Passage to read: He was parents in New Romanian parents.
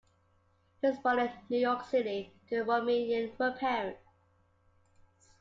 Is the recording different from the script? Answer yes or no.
yes